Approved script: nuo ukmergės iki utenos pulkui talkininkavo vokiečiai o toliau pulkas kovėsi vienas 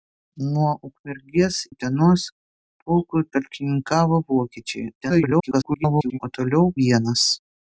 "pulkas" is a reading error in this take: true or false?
true